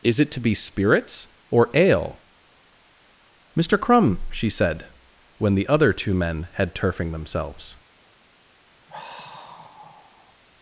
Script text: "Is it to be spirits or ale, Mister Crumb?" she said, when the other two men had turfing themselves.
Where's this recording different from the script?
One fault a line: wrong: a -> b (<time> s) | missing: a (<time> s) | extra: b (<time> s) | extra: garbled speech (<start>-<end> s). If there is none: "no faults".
no faults